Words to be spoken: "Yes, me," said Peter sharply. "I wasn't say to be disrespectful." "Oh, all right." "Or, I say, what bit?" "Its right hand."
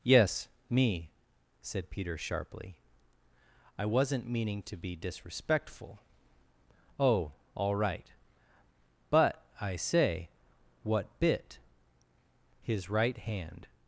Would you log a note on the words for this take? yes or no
yes